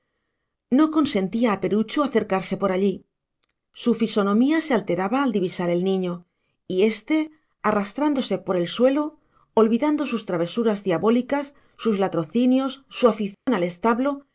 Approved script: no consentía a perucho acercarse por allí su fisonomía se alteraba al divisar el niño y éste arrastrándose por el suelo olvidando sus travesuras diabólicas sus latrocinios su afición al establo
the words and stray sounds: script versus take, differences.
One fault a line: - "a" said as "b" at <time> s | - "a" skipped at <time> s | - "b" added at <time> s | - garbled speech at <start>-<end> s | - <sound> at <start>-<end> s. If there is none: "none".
- dropout at 13.3-13.5 s